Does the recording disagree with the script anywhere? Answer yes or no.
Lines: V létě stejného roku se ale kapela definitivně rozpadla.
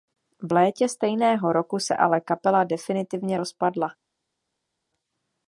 no